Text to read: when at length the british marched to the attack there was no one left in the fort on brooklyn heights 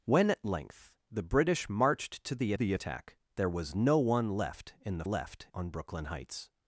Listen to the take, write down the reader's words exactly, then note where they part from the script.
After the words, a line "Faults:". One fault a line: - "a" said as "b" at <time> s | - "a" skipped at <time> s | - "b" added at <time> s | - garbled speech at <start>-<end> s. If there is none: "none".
when at length the british marched to the the attack there was no one left in the left on brooklyn heights
Faults:
- "the" added at 2.5 s
- "fort" said as "left" at 5.0 s